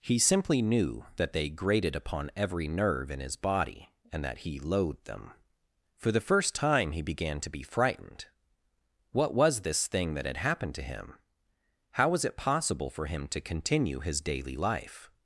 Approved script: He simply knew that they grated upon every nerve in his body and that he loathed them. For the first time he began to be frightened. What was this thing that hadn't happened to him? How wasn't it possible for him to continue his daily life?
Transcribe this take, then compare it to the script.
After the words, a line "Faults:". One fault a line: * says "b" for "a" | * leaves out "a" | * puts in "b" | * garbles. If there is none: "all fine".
He simply knew that they grated upon every nerve in his body and that he loathed them. For the first time he began to be frightened. What was this thing that had happened to him? How was it possible for him to continue his daily life?
Faults:
* says "had" for "hadn't"
* says "was" for "wasn't"